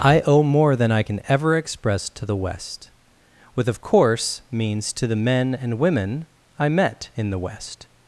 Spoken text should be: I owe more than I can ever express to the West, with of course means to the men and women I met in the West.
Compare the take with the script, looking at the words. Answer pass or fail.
pass